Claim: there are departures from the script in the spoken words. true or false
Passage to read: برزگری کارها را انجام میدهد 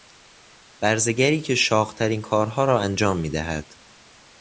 true